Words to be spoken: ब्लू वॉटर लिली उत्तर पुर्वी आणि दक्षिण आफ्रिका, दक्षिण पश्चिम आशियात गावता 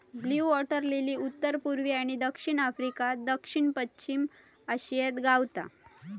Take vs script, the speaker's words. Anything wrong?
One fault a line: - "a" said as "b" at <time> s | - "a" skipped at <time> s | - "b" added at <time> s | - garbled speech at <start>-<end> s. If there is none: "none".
none